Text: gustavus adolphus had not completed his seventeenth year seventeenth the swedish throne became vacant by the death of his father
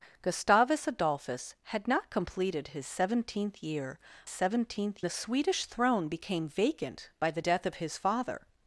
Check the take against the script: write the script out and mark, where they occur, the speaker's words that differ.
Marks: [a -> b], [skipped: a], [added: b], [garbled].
gustavus adolphus had not completed his seventeenth year seventeenth the swedish throne became vacant by the death of his father